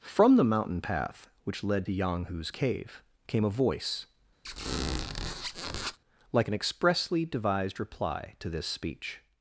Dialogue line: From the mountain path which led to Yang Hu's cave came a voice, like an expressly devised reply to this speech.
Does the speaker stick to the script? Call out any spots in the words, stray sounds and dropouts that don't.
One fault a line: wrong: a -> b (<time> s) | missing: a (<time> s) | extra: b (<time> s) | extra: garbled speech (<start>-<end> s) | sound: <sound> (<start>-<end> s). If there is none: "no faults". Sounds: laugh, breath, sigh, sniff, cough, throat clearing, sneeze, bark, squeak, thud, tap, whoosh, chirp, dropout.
sound: squeak (4.4-6.0 s)